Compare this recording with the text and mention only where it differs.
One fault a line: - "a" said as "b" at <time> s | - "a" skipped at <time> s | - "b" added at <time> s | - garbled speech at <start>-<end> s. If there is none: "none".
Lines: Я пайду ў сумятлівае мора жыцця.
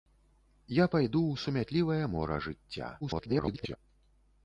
- garbled speech at 3.0-3.8 s